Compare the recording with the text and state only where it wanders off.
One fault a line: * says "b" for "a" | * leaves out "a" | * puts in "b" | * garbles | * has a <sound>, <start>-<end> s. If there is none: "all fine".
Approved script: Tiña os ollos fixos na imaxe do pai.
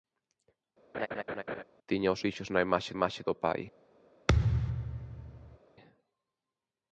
* has a laugh, 0.9-1.6 s
* leaves out "ollos"
* puts in "imaxe"
* has a thud, 4.3-5.6 s